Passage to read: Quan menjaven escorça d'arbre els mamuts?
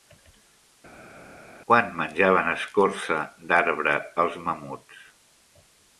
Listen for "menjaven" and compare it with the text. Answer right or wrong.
right